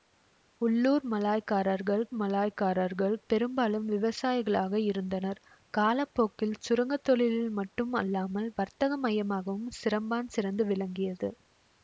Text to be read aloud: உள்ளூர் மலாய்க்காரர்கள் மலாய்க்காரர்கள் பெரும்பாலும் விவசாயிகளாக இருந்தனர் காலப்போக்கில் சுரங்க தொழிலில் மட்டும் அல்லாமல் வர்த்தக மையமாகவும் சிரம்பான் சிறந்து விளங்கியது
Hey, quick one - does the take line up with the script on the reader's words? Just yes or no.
yes